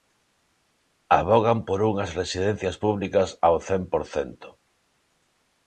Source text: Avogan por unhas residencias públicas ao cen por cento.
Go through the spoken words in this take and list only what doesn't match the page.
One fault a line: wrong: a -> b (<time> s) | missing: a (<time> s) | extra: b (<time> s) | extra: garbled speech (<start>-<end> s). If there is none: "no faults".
no faults